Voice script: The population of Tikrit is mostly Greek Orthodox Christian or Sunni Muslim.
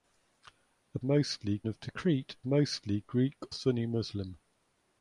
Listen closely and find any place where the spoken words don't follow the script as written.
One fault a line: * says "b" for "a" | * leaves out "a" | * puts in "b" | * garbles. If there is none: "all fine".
* says "mostly" for "population"
* leaves out "is"
* leaves out "Orthodox Christian or"